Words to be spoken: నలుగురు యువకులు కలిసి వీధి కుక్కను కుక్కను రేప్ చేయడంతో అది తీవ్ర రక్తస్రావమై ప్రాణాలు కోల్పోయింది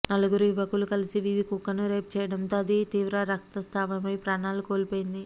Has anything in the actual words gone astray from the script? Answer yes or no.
yes